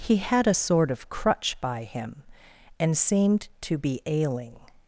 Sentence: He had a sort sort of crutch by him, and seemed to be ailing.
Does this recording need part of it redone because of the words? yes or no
yes